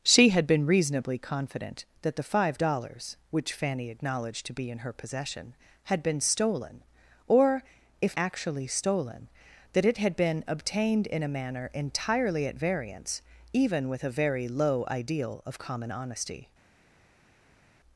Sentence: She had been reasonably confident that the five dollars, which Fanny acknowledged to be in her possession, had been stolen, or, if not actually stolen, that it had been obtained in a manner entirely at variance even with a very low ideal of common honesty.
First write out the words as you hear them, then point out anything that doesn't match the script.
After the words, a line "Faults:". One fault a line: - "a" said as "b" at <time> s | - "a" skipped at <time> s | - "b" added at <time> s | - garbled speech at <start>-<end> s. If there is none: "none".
She had been reasonably confident that the five dollars, which Fanny acknowledged to be in her possession, had been stolen, or, if actually stolen, that it had been obtained in a manner entirely at variance even with a very low ideal of common honesty.
Faults:
- "not" skipped at 8.2 s